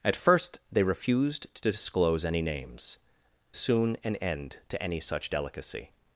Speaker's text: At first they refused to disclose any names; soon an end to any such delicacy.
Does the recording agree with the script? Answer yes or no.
yes